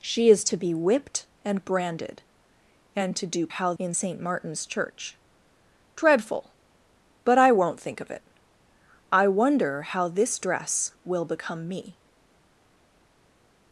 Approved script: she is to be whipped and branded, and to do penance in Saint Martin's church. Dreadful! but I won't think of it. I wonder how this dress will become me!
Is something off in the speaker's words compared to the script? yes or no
yes